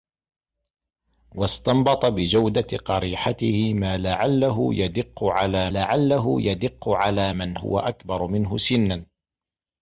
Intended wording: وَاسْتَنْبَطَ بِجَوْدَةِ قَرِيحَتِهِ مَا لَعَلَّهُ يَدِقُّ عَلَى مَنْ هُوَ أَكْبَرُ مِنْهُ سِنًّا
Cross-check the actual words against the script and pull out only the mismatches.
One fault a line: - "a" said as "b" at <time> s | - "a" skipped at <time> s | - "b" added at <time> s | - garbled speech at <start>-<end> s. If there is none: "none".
- "لَعَلَّهُ يَدِقُّ عَلَى" added at 5.7 s